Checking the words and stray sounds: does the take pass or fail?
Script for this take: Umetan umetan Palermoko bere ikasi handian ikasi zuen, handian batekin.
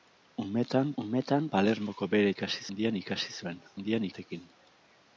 pass